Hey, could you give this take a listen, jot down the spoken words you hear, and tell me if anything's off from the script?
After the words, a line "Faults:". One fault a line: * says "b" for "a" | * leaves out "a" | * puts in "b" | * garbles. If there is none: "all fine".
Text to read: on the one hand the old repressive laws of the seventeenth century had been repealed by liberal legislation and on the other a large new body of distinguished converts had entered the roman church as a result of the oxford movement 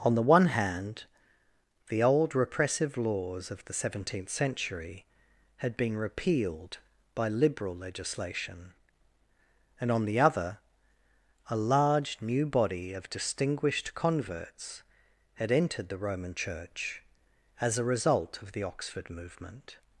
on the one hand the old repressive laws of the seventeenth century had been repealed by liberal legislation and on the other a large new body of distinguished converts had entered the roman church as a result of the oxford movement
Faults:
all fine